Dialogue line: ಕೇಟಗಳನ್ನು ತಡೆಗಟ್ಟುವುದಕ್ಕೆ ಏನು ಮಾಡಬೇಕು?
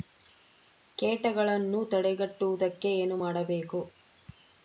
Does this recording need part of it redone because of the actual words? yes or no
no